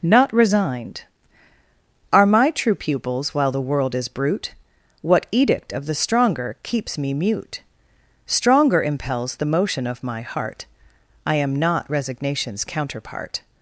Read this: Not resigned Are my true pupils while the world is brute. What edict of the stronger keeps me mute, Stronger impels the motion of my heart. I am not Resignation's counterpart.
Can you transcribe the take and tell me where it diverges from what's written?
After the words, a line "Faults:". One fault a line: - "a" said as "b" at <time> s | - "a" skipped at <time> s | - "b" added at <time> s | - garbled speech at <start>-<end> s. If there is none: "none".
Not resigned Are my true pupils while the world is brute. What edict of the stronger keeps me mute, Stronger impels the motion of my heart. I am not Resignation's counterpart.
Faults:
none